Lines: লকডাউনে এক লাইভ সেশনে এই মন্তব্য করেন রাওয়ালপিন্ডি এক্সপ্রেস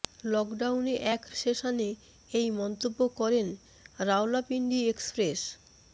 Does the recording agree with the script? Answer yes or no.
no